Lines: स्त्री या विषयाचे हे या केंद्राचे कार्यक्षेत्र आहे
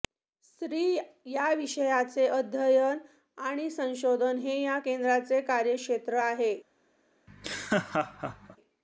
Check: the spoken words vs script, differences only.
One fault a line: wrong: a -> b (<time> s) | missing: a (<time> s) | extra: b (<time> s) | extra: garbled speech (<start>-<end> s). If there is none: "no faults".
extra: अध्ययन आणि संशोधन (2.3 s)